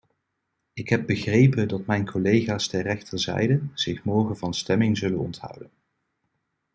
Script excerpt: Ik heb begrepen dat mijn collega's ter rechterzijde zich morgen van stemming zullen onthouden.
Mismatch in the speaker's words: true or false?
false